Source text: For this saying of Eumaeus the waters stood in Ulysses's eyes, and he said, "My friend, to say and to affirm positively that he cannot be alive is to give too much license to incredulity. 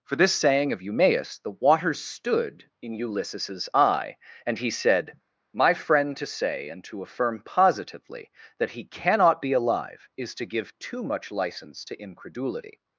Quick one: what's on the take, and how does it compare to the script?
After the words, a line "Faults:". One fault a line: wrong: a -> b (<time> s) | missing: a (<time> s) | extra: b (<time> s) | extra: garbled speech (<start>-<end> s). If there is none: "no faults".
For this saying of Eumaeus the waters stood in Ulysses's eye, and he said, "My friend, to say and to affirm positively that he cannot be alive is to give too much license to incredulity.
Faults:
wrong: eyes -> eye (3.7 s)